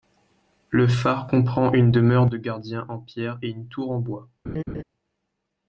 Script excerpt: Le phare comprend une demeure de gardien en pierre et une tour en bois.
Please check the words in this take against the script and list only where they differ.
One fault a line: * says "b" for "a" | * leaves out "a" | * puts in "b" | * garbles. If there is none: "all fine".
all fine